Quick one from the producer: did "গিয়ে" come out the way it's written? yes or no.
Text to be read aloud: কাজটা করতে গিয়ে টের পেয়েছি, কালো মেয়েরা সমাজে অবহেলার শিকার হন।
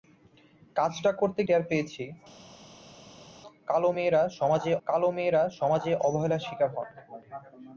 no